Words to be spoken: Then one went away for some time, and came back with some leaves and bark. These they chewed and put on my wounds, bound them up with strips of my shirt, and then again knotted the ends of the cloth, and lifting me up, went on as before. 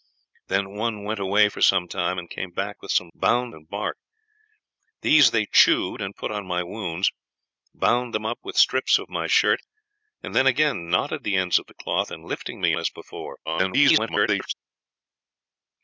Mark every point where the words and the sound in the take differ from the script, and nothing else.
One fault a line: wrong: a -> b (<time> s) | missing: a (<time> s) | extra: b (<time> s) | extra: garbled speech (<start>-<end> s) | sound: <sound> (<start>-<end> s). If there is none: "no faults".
wrong: leaves -> bound (3.1 s)
missing: up went on (12.7 s)
extra: garbled speech (13.4-14.5 s)